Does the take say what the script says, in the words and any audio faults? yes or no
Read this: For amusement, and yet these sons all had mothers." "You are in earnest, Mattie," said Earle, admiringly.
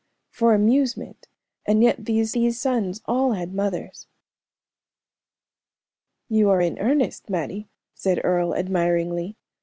no